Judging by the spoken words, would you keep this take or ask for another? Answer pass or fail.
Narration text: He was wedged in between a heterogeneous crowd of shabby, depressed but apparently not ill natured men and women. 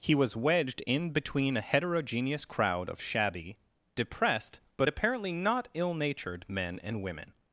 pass